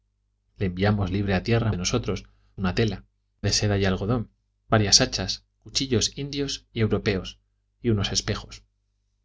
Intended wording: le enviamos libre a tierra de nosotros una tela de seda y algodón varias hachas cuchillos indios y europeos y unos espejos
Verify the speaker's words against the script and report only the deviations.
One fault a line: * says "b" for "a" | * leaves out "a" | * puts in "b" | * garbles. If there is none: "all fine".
all fine